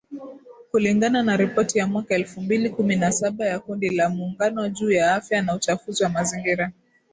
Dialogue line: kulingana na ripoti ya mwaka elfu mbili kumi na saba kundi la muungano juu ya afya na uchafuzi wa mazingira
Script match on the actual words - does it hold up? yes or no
no